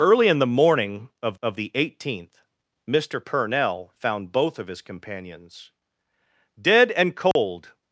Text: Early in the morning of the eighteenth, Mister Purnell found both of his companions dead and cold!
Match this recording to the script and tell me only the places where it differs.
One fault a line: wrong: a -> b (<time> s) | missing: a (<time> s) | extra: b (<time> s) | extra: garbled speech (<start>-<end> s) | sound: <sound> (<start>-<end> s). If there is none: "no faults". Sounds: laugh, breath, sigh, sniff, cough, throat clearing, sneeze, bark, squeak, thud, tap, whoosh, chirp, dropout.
extra: of (1.4 s)
sound: dropout (7.3-7.4 s)